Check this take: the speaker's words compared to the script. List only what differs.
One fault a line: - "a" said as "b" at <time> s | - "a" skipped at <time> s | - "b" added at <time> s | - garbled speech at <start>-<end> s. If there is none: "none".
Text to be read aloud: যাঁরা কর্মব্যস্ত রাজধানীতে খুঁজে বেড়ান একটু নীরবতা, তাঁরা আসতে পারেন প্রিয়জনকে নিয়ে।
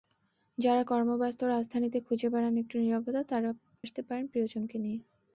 none